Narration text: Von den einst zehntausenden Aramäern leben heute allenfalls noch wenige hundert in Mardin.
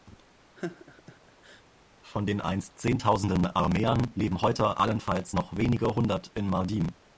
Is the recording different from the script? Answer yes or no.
no